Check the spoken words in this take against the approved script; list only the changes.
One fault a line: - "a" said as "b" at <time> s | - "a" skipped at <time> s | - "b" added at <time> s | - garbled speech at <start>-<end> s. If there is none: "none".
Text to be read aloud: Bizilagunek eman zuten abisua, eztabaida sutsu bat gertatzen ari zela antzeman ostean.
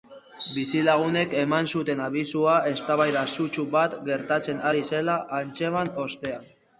none